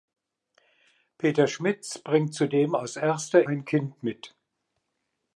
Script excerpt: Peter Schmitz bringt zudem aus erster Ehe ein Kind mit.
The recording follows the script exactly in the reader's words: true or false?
false